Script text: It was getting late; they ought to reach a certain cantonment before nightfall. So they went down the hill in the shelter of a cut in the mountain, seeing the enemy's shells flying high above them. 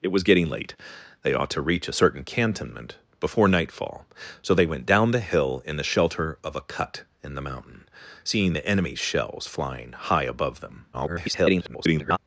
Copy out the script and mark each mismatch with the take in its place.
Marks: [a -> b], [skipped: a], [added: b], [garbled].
It was getting late; they ought to reach a certain cantonment before nightfall. So they went down the hill in the shelter of a cut in the mountain, seeing the enemy's shells flying high above them. [garbled]